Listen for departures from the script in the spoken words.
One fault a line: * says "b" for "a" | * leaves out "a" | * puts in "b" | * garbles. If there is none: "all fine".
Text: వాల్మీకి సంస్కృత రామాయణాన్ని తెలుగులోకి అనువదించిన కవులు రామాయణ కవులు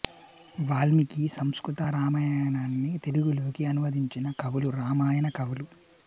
all fine